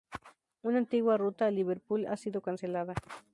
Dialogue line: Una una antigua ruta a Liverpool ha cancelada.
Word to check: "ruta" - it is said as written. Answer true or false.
true